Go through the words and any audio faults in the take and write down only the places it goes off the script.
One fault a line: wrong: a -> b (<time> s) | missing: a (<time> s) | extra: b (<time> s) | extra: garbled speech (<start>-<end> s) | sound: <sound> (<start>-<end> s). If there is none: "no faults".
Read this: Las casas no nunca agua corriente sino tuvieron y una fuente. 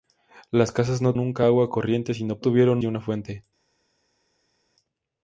no faults